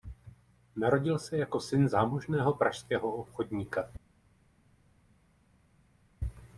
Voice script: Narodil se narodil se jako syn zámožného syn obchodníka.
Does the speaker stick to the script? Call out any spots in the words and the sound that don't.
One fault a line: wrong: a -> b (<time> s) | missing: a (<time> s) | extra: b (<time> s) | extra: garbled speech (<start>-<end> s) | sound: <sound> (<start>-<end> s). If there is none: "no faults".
missing: narodil se (1.4 s)
wrong: syn -> pražského (2.5 s)